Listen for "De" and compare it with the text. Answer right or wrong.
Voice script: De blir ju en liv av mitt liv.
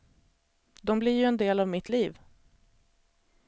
right